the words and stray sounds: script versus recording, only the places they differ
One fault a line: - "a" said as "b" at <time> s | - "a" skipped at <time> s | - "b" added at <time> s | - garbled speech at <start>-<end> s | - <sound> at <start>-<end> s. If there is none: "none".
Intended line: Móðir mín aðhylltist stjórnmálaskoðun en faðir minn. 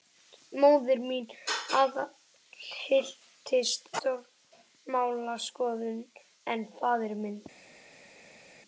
none